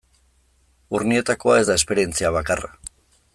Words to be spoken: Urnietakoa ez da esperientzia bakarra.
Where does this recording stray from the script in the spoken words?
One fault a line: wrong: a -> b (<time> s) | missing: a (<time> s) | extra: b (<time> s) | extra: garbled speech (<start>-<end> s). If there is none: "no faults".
no faults